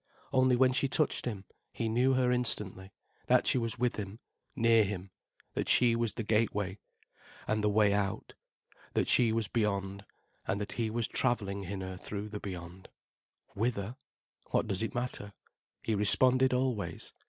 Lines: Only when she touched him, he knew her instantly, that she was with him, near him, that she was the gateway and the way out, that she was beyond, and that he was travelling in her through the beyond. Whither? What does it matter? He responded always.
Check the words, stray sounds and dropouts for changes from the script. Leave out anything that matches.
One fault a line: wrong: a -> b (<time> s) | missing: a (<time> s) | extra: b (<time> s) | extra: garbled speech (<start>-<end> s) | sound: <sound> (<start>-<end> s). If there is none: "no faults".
no faults